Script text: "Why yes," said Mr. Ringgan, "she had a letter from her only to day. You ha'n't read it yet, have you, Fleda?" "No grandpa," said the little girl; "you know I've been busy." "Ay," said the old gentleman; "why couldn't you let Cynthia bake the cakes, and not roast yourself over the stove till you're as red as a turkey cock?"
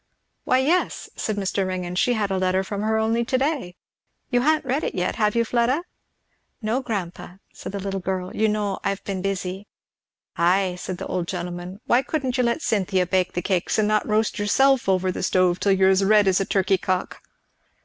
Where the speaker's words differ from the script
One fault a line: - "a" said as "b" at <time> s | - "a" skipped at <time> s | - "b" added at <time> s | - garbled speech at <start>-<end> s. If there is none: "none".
none